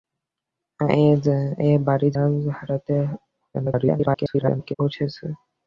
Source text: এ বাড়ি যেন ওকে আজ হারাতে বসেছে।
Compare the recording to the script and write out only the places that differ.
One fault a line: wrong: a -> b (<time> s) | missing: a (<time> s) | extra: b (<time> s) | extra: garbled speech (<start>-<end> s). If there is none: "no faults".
missing: যেন ওকে (2.1 s)
extra: garbled speech (3.5-4.7 s)